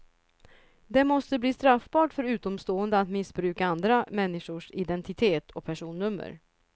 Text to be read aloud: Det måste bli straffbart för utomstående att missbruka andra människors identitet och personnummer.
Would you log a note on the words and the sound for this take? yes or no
no